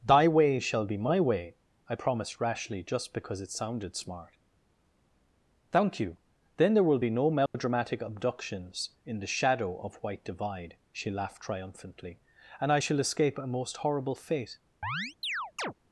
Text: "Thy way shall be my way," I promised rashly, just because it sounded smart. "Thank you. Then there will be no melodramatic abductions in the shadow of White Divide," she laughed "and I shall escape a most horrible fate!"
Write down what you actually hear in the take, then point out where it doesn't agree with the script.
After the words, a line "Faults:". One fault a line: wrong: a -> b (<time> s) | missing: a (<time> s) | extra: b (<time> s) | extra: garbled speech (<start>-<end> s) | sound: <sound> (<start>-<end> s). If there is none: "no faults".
"Thy way shall be my way," I promised rashly, just because it sounded smart. "Thank you. Then there will be no melodramatic abductions in the shadow of White Divide," she laughed triumphantly, "and I shall escape a most horrible fate!"
Faults:
sound: dropout (7.5-7.5 s)
extra: triumphantly (11.4 s)
sound: chirp (14.8-15.7 s)